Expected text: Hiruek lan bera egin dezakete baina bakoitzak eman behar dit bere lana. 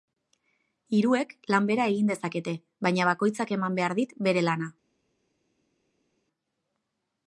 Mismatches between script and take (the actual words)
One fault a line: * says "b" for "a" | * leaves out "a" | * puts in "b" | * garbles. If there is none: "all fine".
all fine